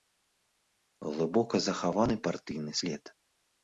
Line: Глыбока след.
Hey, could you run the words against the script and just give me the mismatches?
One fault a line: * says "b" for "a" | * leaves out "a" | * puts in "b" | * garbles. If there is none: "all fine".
* puts in "захаваны партыйны"